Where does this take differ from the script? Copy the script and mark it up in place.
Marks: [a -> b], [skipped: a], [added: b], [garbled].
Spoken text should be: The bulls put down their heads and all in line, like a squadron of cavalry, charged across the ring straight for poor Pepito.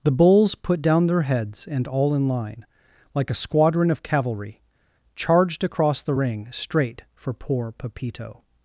The bulls put down their heads and all in line, like a squadron of cavalry, charged across the ring straight for poor Pepito.